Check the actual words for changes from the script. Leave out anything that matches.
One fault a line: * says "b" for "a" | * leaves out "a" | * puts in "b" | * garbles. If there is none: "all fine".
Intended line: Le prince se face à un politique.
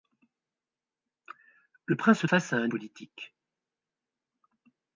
all fine